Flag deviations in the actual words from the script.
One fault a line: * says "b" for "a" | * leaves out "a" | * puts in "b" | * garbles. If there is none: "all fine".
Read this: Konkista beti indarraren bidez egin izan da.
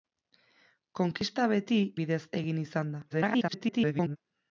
* leaves out "indarraren"
* garbles